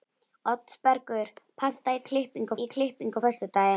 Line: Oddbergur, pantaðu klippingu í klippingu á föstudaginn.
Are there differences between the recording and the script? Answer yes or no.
no